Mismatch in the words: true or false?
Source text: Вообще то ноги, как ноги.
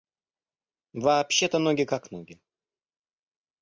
false